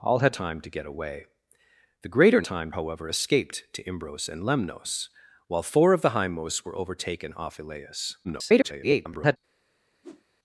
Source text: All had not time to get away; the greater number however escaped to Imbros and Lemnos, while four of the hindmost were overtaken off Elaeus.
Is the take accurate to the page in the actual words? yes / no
no